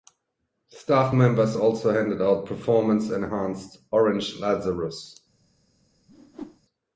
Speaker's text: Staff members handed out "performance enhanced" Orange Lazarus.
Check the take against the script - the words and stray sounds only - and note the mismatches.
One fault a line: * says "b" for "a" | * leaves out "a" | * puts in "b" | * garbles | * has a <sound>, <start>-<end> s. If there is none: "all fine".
* puts in "also"
* has a whoosh, 6.1-6.6 s